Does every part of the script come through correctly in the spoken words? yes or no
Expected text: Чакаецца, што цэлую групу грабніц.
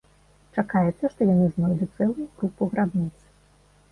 no